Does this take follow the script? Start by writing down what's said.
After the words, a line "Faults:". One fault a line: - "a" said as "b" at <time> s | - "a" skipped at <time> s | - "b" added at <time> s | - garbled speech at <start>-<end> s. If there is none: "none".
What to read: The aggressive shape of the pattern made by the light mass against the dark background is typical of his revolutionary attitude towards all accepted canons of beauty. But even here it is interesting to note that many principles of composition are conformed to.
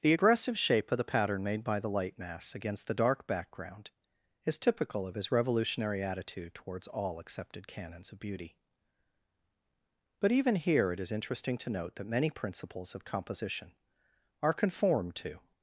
The aggressive shape of the pattern made by the light mass against the dark background is typical of his revolutionary attitude towards all accepted canons of beauty. But even here it is interesting to note that many principles of composition are conformed to.
Faults:
none